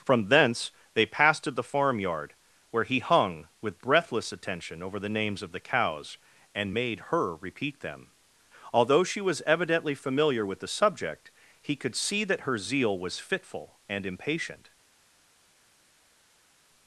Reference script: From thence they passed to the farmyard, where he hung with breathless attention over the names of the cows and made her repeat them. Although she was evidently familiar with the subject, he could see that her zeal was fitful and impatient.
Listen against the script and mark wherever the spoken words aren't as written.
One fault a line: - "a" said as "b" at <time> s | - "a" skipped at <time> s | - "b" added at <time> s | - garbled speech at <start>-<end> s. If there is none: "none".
none